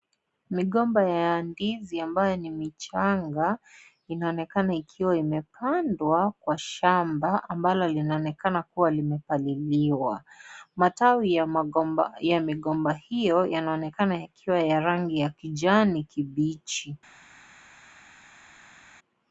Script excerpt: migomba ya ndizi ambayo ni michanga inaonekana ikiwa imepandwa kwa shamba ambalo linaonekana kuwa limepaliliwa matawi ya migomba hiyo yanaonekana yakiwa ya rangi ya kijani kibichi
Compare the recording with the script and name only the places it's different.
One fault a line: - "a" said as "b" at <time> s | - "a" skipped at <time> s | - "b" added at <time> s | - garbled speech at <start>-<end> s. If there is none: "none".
none